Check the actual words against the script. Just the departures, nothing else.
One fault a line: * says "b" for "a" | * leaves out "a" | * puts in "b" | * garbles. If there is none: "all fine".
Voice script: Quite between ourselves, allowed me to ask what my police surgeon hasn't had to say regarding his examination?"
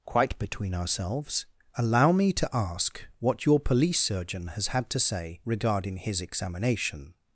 * says "allow" for "allowed"
* says "your" for "my"
* says "has" for "hasn't"